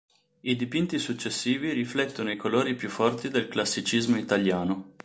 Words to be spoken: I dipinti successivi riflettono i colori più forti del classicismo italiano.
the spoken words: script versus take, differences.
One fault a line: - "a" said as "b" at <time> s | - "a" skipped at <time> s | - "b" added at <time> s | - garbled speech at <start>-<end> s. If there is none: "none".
none